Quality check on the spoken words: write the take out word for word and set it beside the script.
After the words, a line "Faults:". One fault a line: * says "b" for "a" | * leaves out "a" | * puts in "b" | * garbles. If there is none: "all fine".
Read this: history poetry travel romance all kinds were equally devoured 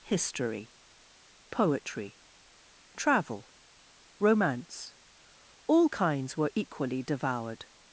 history poetry travel romance all kinds were equally devoured
Faults:
all fine